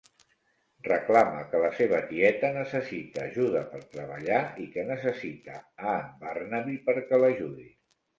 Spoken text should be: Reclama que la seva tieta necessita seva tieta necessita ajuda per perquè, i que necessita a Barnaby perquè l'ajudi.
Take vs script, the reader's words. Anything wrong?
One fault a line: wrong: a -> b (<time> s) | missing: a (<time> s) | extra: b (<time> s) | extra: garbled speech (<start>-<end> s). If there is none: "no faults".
missing: seva tieta necessita (3.2 s)
wrong: perquè -> treballar (4.0 s)
extra: en (6.0 s)